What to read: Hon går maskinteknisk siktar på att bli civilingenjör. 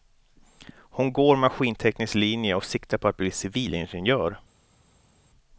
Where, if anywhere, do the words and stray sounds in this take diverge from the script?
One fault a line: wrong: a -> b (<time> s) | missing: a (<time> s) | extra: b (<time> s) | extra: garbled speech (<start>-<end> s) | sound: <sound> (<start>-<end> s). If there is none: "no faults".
extra: linje och (2.1 s)